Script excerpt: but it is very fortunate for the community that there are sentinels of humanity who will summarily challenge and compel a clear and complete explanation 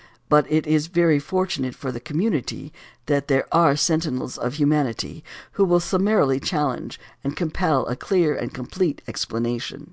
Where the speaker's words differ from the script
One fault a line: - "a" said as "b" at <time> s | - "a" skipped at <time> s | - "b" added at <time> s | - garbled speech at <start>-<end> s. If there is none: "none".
none